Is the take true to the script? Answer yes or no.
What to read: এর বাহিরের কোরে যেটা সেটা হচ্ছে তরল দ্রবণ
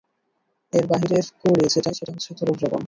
yes